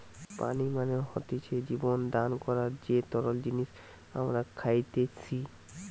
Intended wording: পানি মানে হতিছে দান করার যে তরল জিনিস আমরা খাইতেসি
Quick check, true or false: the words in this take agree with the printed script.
false